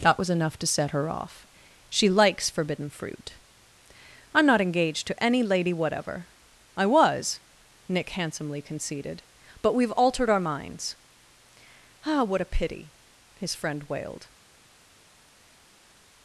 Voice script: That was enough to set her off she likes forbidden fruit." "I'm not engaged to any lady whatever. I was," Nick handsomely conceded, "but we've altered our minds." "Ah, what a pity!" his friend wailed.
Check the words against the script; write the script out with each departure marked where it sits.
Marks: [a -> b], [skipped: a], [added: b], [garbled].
That was enough to set her off she likes forbidden fruit." "I'm not engaged to any lady whatever. I was," Nick handsomely conceded, "but we've altered our minds." "Ah, what a pity!" his friend wailed.